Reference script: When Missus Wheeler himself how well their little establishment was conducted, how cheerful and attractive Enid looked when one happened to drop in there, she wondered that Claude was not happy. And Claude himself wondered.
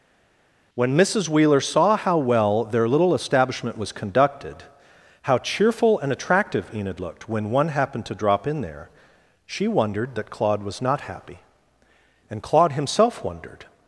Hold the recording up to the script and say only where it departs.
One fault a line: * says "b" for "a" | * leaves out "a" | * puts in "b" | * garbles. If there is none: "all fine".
* says "saw" for "himself"